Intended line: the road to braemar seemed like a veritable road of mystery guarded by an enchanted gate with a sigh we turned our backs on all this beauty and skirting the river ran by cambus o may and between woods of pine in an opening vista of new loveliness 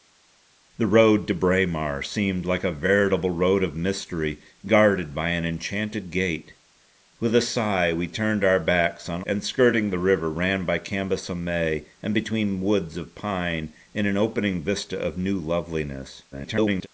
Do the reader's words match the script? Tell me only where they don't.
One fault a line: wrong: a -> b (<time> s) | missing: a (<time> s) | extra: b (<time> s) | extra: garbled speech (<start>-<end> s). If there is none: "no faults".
missing: all this beauty (9.2 s)
extra: garbled speech (16.3-16.9 s)